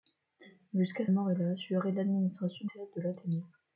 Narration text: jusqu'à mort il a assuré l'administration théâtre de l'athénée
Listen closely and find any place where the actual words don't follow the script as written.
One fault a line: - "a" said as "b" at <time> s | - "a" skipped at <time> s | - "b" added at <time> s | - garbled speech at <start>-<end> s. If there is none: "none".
none